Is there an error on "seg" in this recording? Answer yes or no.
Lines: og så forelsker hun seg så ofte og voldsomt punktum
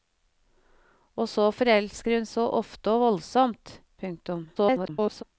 yes